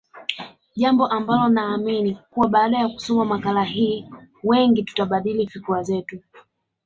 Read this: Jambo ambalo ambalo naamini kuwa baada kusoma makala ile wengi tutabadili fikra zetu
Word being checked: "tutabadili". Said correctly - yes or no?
yes